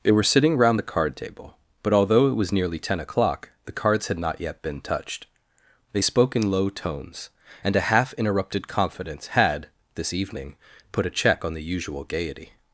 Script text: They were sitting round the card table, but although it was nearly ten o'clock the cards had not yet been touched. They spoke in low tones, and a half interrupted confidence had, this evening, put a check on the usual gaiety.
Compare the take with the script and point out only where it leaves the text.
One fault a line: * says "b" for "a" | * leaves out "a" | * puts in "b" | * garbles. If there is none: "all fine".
all fine